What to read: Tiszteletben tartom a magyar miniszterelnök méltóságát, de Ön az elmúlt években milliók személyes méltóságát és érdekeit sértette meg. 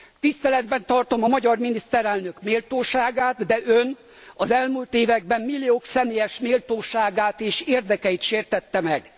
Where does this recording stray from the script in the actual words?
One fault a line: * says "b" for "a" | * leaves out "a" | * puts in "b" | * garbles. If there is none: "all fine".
all fine